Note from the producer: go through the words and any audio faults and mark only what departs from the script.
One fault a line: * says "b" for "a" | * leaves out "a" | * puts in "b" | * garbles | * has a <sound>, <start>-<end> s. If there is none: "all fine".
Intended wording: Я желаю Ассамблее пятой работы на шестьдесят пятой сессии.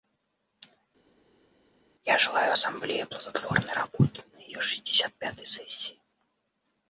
* says "плодотворной" for "пятой"
* puts in "ее"